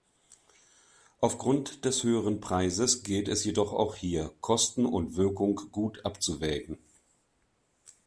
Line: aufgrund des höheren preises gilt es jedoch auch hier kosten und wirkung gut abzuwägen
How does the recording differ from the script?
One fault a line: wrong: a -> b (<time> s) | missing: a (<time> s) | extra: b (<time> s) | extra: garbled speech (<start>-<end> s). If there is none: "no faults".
no faults